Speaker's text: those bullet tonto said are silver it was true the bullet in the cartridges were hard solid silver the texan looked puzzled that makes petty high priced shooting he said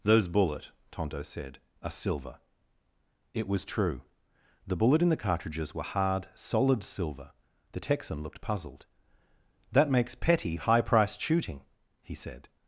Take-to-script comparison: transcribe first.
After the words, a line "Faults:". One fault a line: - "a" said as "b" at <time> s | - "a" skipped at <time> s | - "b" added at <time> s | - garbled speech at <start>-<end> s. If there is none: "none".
those bullet tonto said are silver it was true the bullet in the cartridges were hard solid silver the texan looked puzzled that makes petty high priced shooting he said
Faults:
none